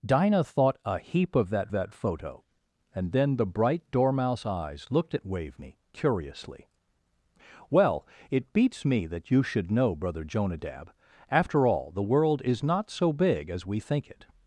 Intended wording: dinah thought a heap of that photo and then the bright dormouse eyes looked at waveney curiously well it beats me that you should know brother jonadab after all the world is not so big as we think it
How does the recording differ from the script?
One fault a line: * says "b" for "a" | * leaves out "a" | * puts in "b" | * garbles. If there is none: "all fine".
* puts in "that"